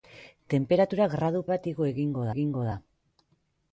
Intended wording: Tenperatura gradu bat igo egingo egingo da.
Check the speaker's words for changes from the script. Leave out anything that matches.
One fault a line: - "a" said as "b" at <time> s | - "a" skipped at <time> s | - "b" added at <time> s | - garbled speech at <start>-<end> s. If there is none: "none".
none